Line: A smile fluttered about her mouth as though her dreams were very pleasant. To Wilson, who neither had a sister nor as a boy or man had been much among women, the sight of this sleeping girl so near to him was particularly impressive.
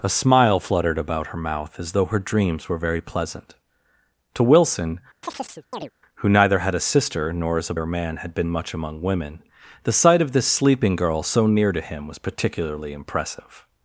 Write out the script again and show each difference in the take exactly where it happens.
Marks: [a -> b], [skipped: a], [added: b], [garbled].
A smile fluttered about her mouth as though her dreams were very pleasant. To Wilson, who neither had a sister nor as a [skipped: boy] or man had been much among women, the sight of this sleeping girl so near to him was particularly impressive.